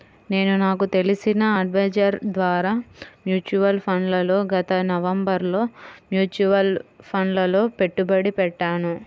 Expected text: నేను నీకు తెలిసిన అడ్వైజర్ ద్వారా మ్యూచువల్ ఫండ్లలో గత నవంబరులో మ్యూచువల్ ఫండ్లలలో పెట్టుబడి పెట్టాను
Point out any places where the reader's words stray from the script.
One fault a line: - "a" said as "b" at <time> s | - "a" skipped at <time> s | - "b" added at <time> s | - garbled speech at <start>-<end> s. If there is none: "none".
- "నీకు" said as "నాకు" at 0.6 s